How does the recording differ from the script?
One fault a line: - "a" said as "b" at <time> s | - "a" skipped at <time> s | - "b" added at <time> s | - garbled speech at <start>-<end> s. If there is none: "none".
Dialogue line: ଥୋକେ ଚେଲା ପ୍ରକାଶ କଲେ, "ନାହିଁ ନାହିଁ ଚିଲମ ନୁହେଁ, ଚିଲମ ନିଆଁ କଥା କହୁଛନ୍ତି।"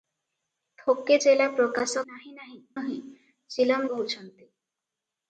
- "କଲେ" skipped at 2.0 s
- "ଚିଲମ" skipped at 2.6 s
- "ନିଆଁ କଥା" skipped at 3.9 s